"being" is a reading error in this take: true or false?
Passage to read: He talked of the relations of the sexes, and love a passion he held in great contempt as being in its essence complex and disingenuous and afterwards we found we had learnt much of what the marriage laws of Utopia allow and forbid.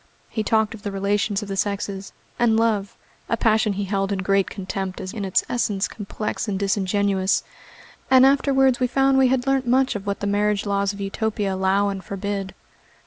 true